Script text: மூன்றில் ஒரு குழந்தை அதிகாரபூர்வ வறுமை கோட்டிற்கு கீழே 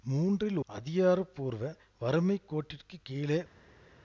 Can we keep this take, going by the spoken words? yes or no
no